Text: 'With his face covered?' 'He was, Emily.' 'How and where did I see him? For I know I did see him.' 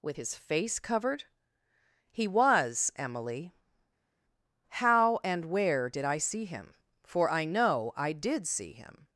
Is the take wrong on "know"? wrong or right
right